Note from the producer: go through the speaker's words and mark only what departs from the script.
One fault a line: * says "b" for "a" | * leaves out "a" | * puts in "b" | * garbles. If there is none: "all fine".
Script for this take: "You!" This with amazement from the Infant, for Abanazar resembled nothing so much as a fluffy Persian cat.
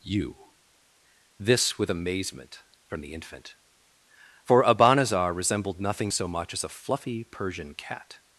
all fine